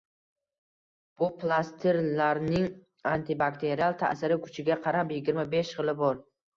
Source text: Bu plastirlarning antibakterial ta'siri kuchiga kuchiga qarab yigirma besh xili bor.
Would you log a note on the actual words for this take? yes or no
yes